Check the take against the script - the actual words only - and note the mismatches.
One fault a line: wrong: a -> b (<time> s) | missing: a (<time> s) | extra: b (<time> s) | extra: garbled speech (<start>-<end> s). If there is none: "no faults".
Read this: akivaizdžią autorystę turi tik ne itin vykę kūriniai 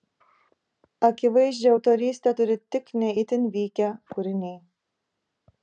no faults